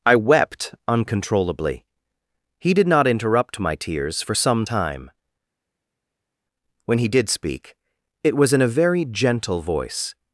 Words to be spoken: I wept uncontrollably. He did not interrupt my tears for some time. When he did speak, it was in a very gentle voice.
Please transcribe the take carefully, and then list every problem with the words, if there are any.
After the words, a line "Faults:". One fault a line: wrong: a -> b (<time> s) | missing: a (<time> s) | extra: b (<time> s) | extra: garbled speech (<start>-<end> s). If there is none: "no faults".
I wept uncontrollably. He did not interrupt my tears for some time. When he did speak, it was in a very gentle voice.
Faults:
no faults